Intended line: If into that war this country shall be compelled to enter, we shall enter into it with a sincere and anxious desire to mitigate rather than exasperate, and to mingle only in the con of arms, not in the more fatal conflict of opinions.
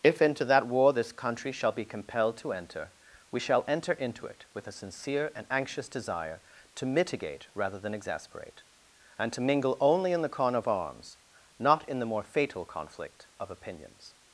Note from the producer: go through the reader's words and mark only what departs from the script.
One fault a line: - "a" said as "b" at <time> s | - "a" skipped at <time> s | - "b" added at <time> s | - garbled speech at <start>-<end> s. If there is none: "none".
none